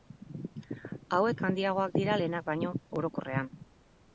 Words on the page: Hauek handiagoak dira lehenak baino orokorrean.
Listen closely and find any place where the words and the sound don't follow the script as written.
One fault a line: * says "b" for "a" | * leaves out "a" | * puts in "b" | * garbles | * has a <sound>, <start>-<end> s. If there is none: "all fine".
all fine